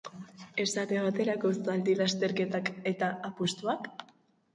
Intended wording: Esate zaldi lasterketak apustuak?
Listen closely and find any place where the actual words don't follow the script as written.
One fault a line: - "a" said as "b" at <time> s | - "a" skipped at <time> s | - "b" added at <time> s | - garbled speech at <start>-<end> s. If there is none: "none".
- "baterako" added at 1.1 s
- "eta" added at 2.9 s